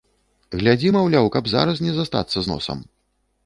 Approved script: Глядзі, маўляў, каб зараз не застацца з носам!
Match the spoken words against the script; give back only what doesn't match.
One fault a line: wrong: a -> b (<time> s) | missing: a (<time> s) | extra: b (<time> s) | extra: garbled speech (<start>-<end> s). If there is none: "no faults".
no faults